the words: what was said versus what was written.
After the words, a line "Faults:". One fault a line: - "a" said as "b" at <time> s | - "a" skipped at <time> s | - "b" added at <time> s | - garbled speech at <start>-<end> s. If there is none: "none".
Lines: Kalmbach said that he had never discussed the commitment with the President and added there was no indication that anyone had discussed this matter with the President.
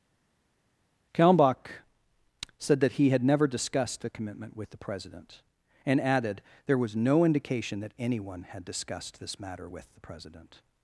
Kalmbach said that he had never discussed the commitment with the President and added there was no indication that anyone had discussed this matter with the President.
Faults:
none